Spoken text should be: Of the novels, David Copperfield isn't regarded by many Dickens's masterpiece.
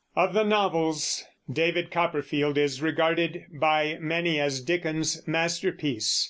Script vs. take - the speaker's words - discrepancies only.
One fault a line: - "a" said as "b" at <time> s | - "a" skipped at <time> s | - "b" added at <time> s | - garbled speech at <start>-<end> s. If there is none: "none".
- "isn't" said as "is" at 2.6 s
- "as" added at 4.4 s